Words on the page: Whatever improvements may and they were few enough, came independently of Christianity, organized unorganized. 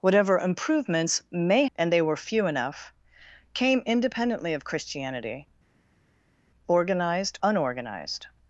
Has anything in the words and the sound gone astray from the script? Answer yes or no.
no